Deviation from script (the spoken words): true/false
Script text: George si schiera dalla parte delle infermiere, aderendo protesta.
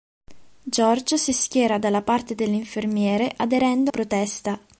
false